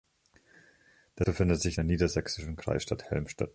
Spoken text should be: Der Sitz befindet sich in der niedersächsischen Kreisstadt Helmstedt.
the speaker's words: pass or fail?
fail